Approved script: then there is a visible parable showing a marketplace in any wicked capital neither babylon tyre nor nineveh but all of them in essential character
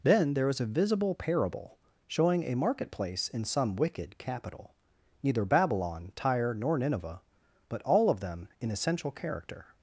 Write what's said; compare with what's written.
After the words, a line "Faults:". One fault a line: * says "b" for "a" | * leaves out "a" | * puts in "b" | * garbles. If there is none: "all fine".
then there is a visible parable showing a marketplace in some wicked capital neither babylon tyre nor nineveh but all of them in essential character
Faults:
* says "some" for "any"